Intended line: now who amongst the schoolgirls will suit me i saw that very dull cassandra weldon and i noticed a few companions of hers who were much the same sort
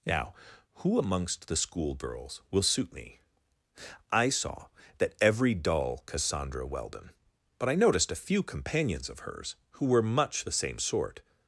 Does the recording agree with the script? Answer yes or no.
no